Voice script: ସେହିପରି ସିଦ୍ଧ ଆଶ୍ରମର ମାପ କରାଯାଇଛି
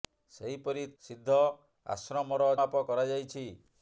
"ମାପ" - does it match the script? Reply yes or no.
yes